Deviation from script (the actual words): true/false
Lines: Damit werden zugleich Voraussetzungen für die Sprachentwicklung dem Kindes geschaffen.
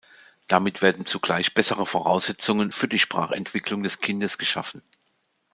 true